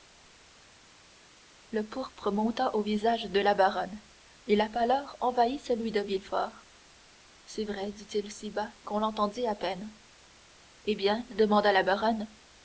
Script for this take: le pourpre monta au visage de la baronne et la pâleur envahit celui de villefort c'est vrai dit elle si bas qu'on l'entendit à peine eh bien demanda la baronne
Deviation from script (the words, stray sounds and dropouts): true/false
true